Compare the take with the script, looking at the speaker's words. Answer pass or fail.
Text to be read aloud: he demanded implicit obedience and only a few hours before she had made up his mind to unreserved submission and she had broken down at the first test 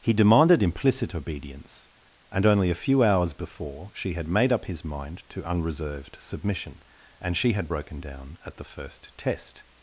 pass